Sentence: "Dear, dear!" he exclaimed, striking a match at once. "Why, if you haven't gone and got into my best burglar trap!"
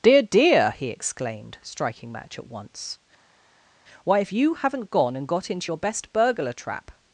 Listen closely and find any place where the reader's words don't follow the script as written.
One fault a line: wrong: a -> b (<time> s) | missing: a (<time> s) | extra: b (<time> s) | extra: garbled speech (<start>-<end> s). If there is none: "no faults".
missing: a (2.1 s)
wrong: my -> your (5.7 s)